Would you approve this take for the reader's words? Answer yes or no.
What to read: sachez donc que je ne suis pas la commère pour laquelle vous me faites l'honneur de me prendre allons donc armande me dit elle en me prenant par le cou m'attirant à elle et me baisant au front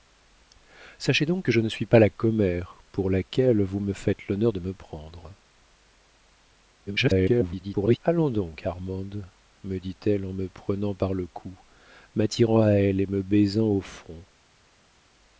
no